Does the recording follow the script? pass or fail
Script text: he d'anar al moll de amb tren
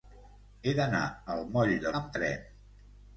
pass